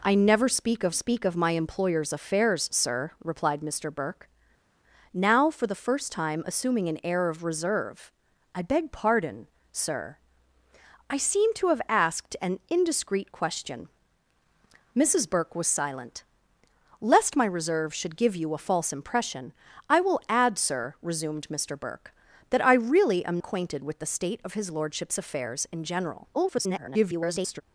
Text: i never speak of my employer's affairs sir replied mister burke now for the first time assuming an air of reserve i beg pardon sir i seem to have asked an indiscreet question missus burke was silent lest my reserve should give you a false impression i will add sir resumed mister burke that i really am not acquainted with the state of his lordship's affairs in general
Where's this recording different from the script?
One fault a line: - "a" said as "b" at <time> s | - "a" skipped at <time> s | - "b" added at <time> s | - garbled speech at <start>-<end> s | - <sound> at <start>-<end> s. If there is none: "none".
- "speak of" added at 0.9 s
- "not" skipped at 23.4 s
- garbled speech at 26.3-27.6 s